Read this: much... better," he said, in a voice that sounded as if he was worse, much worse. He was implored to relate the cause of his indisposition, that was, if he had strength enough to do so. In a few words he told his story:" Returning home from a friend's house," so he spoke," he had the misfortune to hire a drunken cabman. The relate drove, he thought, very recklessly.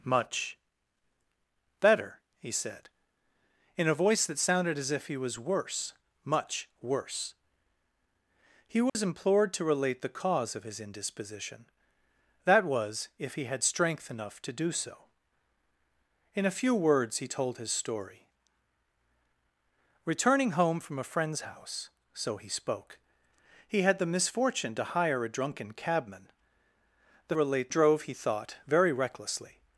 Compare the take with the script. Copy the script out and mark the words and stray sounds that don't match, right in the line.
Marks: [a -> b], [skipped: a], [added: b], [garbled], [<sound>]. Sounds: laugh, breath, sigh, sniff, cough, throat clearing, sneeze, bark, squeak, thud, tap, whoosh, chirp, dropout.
much... better," he said, in a voice that sounded as if he was worse, much worse. He was [dropout] implored to relate the cause of his indisposition, that was, if he had strength enough to do so. In a few words he told his story:" Returning home from a friend's house," so he spoke," he had the misfortune to hire a drunken cabman. The relate drove, he thought, very recklessly.